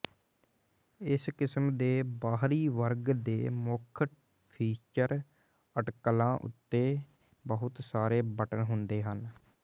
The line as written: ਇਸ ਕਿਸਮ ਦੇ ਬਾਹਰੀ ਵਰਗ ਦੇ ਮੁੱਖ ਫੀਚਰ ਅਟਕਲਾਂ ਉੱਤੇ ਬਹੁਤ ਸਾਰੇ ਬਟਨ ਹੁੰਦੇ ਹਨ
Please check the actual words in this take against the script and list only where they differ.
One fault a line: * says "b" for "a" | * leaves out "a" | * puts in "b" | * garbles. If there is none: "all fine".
all fine